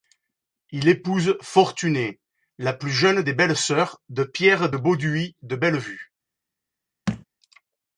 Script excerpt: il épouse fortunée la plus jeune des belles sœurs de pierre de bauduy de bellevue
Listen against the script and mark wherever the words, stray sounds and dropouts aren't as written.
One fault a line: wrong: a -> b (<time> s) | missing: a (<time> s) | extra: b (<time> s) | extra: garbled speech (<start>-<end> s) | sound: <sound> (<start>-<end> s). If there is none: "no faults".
sound: thud (7.1-7.3 s)